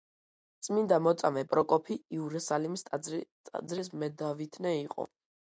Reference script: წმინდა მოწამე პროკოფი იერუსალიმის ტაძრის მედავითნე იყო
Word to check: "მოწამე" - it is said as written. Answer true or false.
true